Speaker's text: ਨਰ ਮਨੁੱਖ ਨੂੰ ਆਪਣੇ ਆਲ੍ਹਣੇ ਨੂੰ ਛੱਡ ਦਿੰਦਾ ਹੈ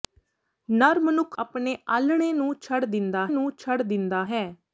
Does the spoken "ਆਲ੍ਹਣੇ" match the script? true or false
false